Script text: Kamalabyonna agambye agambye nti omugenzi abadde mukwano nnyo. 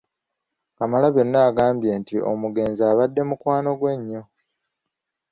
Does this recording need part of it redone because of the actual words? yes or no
yes